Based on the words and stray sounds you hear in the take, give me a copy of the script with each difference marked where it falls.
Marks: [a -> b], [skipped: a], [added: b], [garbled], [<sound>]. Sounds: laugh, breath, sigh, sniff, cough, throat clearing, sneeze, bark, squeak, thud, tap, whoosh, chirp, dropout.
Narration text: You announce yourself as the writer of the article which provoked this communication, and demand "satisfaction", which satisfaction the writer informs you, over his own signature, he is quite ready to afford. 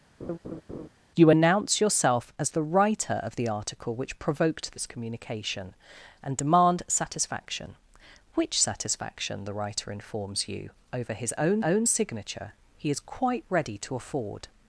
[laugh] You announce yourself as the writer of the article which provoked this communication, and demand "satisfaction", which satisfaction the writer informs you, over his own [added: own] signature, he is quite ready to afford.